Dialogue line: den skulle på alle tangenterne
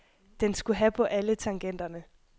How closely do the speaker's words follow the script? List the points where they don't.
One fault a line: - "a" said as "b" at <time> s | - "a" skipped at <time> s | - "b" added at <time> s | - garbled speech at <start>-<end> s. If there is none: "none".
- "have" added at 0.8 s